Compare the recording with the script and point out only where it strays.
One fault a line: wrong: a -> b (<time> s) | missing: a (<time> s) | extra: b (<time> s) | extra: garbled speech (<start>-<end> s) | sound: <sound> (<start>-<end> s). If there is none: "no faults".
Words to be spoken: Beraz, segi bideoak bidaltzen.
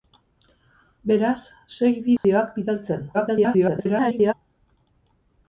sound: dropout (2.2-2.2 s)
extra: garbled speech (3.1-4.3 s)